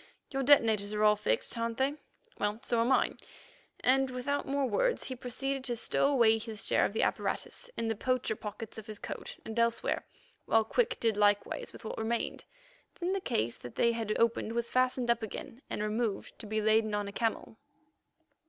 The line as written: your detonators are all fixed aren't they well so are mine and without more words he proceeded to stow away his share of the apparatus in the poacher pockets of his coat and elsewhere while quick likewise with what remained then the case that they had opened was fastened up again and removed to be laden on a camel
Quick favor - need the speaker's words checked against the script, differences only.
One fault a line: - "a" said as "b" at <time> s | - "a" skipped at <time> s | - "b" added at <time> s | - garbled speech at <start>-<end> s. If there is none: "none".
- "did" added at 11.0 s